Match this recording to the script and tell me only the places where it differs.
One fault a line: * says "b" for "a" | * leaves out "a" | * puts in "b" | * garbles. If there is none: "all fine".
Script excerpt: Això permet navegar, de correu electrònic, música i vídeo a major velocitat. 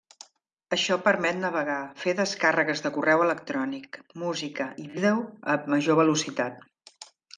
* puts in "fer descàrregues"